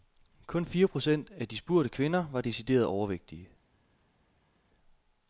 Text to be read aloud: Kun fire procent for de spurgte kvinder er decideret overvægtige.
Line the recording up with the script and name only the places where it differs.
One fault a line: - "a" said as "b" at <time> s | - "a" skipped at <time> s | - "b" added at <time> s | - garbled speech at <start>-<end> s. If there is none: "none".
- "for" said as "af" at 1.3 s
- "er" said as "var" at 2.3 s